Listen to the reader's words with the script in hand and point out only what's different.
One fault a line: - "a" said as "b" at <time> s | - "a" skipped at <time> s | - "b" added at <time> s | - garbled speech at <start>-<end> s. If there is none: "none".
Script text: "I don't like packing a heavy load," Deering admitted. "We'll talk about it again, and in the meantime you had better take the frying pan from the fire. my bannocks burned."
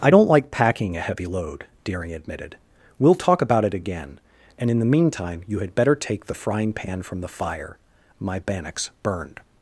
none